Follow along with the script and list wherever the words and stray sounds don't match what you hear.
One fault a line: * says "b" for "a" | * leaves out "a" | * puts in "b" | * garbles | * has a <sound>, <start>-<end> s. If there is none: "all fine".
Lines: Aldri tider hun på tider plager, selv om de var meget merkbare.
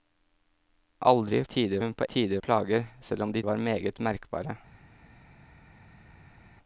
all fine